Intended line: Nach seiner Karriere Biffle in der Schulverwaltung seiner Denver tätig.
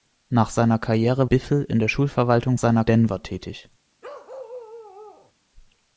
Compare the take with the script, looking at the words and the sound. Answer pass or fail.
fail